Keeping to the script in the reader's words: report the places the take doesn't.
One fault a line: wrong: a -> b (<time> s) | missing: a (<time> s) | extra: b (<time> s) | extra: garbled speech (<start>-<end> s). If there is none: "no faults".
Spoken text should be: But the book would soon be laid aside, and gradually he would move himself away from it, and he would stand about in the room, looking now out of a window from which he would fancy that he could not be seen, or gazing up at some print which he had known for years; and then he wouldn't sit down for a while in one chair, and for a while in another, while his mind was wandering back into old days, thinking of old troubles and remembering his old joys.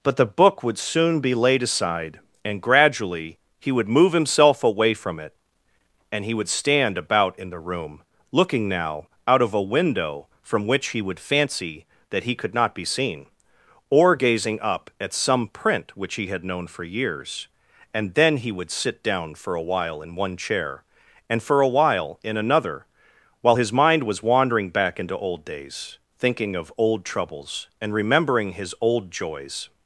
wrong: wouldn't -> would (18.5 s)